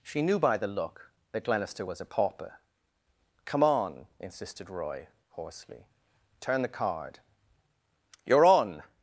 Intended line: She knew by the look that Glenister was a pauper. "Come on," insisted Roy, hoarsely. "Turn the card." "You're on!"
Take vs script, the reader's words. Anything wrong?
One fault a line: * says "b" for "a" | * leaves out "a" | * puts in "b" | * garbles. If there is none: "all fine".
all fine